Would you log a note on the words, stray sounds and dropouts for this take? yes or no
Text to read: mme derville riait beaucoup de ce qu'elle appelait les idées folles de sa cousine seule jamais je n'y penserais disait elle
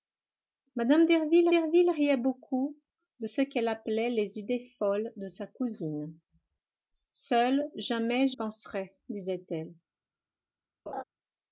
yes